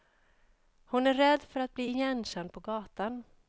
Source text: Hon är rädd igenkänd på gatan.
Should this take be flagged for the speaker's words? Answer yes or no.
yes